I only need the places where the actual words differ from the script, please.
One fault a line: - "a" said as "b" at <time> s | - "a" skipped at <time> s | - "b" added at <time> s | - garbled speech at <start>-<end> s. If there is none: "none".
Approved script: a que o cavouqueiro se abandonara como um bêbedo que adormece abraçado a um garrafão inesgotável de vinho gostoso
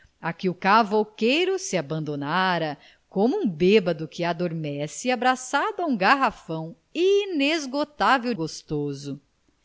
- "de vinho" skipped at 8.3 s